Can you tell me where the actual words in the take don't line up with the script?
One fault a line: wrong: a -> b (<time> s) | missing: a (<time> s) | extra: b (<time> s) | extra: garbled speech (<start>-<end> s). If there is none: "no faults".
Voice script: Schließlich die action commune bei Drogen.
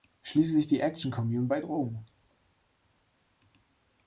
no faults